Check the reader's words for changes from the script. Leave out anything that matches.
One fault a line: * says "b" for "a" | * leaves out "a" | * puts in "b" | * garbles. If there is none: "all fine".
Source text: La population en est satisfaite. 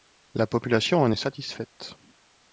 all fine